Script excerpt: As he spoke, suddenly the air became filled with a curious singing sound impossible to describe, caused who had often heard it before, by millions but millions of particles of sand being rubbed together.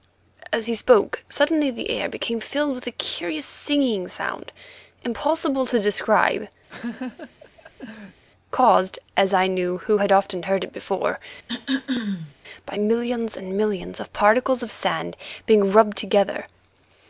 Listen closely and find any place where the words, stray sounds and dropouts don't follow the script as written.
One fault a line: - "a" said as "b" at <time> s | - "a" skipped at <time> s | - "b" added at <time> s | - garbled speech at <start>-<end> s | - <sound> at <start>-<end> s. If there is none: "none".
- laugh at 6.7-8.2 s
- "as I knew" added at 9.2 s
- throat clearing at 11.5-12.3 s
- "but" said as "and" at 13.3 s